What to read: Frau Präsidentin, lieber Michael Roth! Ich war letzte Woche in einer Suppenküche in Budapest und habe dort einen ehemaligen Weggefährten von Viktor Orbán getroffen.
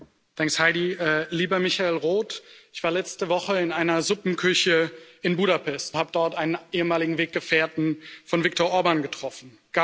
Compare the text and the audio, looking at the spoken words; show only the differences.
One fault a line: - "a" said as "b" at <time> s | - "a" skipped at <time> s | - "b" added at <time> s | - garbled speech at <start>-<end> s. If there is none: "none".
- "und" skipped at 6.0 s